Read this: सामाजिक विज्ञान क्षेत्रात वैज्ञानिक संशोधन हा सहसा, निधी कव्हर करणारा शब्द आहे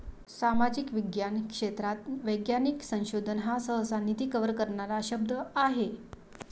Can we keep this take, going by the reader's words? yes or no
yes